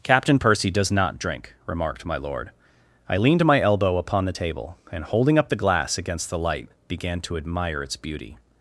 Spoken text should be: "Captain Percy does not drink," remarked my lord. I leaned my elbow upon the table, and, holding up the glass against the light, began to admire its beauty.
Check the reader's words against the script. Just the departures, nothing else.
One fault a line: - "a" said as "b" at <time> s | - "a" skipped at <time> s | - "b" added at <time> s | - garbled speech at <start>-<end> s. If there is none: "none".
none